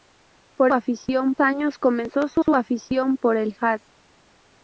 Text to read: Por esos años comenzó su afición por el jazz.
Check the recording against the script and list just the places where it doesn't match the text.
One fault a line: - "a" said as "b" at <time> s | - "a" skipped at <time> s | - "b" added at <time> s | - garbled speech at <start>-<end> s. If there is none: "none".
- "esos" said as "afición" at 0.7 s
- "su" added at 2.4 s